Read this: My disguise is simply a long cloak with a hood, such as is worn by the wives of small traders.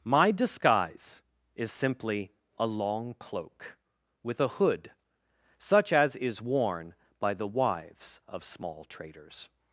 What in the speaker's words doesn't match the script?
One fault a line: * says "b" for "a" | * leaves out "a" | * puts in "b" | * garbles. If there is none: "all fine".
all fine